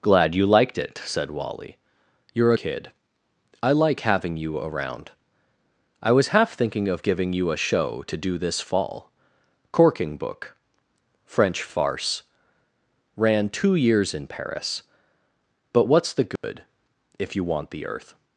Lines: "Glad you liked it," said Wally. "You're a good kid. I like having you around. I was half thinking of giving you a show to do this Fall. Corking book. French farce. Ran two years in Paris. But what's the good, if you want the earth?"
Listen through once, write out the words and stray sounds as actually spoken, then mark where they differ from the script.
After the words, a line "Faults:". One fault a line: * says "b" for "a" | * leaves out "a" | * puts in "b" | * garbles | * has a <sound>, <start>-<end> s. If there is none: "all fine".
"Glad you liked it," said Wally. "You're kid. I like having you around. I was half thinking of giving you a show to do this Fall. Corking book. French farce. Ran two years in Paris. But what's the good, if you want the earth?"
Faults:
* leaves out "a good"
* has a dropout, 16.4-16.4 s